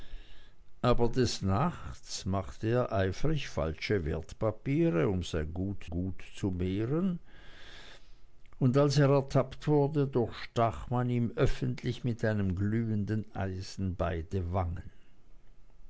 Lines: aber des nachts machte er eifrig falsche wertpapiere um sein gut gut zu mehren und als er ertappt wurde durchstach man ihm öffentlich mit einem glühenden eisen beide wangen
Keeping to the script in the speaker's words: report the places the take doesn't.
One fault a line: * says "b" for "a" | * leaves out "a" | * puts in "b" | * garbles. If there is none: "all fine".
all fine